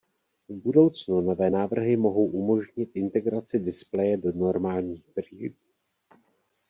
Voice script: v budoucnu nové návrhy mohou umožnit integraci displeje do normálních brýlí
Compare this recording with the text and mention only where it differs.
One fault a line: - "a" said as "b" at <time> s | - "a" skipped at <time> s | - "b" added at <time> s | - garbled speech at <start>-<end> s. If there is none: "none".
none